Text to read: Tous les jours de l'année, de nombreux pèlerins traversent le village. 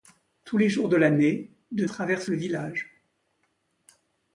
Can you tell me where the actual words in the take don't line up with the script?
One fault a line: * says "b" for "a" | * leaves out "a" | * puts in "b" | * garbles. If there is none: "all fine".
* leaves out "nombreux pèlerins"